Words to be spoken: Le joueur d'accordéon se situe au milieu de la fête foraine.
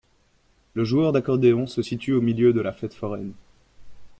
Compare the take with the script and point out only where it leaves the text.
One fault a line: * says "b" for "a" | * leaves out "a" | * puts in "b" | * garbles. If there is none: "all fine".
all fine